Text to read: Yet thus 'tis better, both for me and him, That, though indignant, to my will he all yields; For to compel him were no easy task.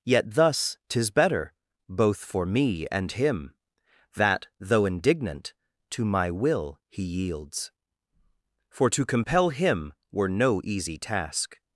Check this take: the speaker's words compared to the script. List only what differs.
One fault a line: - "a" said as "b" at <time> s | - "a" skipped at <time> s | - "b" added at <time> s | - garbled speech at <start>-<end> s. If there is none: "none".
- "all" skipped at 7.0 s